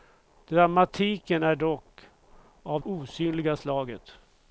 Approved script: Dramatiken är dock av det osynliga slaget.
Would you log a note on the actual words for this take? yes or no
yes